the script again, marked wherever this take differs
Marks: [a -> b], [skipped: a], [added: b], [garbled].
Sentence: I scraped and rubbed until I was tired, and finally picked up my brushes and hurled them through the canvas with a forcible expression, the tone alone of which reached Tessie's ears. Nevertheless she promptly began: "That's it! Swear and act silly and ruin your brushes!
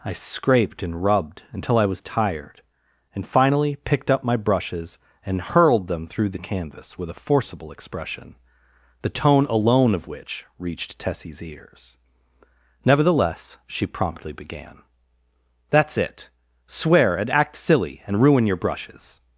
I scraped and rubbed until I was tired, and finally picked up my brushes and hurled them through the canvas with a forcible expression, the tone alone of which reached Tessie's ears. Nevertheless she promptly began: "That's it! Swear and act silly and ruin your brushes!